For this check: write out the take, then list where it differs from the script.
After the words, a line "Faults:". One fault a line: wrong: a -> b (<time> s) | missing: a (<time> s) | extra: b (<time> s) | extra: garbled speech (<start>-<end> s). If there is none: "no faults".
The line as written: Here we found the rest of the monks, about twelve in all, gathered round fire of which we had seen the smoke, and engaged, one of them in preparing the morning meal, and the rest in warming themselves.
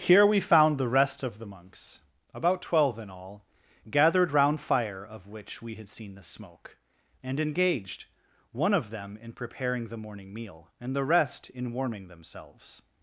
Here we found the rest of the monks, about twelve in all, gathered round fire of which we had seen the smoke, and engaged, one of them in preparing the morning meal, and the rest in warming themselves.
Faults:
no faults